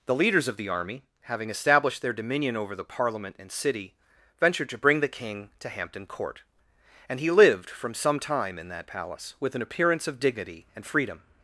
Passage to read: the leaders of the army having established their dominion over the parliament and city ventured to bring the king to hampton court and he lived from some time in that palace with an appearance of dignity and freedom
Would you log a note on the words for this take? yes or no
no